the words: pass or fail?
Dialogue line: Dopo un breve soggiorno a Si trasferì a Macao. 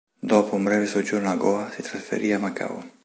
fail